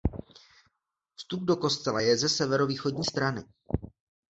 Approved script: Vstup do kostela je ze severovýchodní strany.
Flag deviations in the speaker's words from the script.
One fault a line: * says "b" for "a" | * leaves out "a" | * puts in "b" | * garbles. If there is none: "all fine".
all fine